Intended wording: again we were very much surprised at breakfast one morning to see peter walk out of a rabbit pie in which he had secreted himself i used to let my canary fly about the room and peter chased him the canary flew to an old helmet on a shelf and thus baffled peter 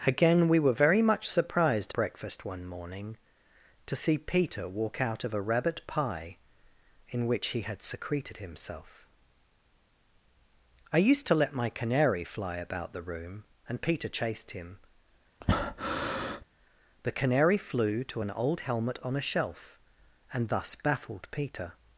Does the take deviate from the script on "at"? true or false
true